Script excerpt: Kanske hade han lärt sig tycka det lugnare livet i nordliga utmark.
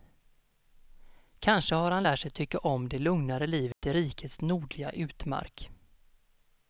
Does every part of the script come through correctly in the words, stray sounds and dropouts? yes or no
no